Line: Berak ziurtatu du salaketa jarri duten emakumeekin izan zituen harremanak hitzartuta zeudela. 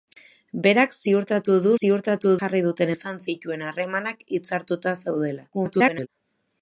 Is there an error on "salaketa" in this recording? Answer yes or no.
yes